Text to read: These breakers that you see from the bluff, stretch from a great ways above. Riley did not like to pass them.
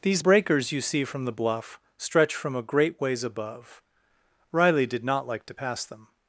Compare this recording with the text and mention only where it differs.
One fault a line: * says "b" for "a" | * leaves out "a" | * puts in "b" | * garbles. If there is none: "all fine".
* leaves out "that"